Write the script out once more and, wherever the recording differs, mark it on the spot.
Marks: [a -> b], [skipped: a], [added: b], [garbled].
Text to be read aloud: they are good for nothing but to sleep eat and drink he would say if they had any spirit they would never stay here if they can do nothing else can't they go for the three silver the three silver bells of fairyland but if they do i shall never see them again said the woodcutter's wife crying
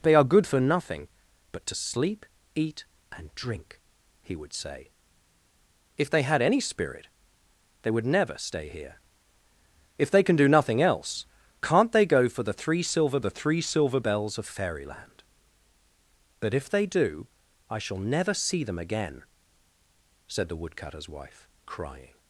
they are good for nothing but to sleep eat and drink he would say if they had any spirit they would never stay here if they can do nothing else can't they go for the three silver the three silver bells of fairyland but if they do i shall never see them again said the woodcutter's wife crying